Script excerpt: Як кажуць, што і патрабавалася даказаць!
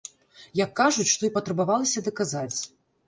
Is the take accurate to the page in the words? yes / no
yes